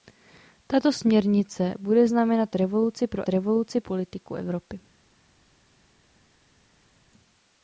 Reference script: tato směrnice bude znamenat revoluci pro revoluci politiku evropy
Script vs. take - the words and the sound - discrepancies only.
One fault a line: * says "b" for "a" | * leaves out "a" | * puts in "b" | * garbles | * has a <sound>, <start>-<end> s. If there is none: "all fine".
all fine